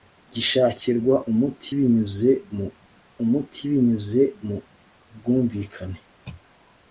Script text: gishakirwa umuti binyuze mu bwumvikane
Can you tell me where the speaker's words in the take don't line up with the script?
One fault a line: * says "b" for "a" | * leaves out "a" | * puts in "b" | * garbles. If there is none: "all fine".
* puts in "umuti binyuze mu"